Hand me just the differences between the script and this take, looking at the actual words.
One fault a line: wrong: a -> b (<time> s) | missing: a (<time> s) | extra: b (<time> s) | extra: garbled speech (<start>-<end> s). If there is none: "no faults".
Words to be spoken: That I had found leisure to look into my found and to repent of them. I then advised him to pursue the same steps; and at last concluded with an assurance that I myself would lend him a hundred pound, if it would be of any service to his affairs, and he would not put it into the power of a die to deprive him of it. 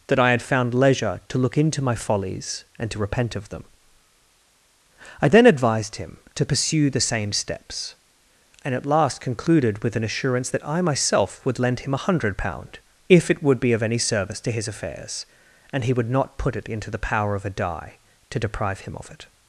wrong: found -> follies (1.9 s)